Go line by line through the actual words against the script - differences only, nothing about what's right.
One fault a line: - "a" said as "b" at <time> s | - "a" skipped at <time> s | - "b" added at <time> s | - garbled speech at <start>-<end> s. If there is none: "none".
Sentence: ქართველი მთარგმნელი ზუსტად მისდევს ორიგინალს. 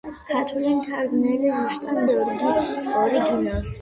- "მისდევს" skipped at 2.0 s